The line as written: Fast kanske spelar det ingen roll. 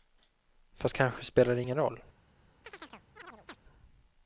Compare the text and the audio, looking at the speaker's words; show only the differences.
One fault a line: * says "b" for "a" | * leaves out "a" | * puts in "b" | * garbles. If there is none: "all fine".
all fine